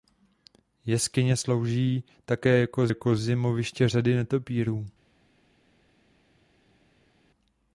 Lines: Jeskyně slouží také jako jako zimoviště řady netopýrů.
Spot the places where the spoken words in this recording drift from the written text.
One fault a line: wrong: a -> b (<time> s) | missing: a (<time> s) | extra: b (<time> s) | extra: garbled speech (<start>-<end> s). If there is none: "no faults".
no faults